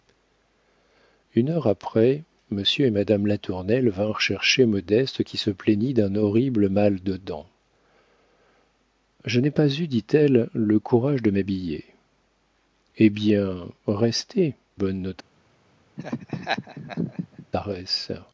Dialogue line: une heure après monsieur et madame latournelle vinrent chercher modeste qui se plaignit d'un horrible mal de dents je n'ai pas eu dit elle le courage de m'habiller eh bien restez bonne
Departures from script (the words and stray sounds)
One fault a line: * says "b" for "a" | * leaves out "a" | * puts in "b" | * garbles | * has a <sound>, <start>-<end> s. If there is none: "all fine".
* has a laugh, 16.0-17.5 s